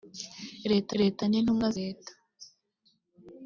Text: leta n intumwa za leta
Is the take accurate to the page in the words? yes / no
no